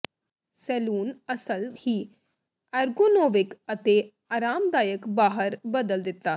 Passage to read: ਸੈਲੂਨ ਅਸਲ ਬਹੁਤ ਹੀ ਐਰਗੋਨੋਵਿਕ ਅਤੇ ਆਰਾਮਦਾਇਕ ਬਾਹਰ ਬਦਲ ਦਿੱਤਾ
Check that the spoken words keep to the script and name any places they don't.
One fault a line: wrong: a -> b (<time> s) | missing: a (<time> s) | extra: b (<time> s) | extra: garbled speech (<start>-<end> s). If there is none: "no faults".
missing: ਬਹੁਤ (1.7 s)